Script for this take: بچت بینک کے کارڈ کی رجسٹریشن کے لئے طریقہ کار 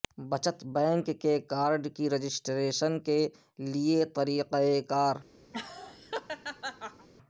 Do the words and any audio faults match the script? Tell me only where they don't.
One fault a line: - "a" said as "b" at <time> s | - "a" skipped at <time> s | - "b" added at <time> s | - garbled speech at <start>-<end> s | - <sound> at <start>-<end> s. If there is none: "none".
- laugh at 5.5-7.1 s